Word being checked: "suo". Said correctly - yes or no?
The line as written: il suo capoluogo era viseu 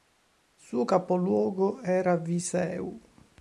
yes